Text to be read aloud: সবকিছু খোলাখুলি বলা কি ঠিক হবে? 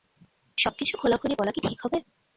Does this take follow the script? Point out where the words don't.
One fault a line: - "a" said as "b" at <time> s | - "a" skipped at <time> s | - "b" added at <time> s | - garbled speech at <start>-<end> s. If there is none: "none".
none